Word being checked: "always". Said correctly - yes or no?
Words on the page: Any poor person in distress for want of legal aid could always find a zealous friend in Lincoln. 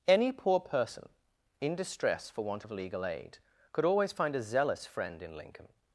yes